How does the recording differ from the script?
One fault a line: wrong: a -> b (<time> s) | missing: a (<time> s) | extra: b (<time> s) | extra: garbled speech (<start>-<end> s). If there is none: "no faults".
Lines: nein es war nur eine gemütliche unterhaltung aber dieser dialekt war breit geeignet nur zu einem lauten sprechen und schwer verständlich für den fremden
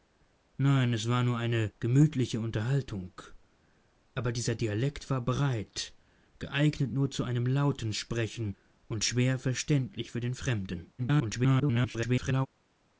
extra: garbled speech (11.0-12.5 s)